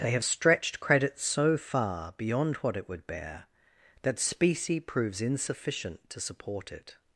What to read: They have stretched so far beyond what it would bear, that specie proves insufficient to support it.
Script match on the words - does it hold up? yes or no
no